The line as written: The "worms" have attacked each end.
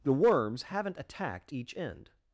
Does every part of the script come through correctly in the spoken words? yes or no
no